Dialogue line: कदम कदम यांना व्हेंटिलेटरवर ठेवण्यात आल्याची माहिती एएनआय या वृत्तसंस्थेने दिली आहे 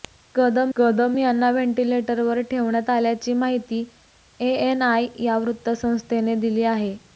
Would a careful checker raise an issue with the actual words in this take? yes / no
no